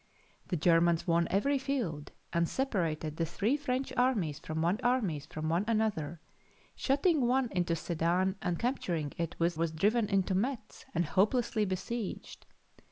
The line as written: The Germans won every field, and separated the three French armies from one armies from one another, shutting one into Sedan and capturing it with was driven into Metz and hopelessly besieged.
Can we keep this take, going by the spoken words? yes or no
yes